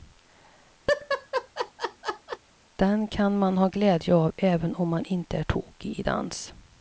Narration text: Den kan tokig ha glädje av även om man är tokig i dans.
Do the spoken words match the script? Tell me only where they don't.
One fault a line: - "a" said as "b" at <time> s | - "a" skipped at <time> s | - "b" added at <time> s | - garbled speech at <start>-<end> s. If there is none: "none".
- "tokig" said as "man" at 3.4 s
- "inte" added at 5.0 s